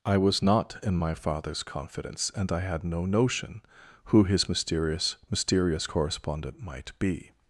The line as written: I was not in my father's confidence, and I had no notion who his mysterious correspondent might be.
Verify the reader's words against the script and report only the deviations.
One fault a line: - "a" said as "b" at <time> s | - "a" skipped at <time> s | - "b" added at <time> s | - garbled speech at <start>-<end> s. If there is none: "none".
- "mysterious" added at 5.3 s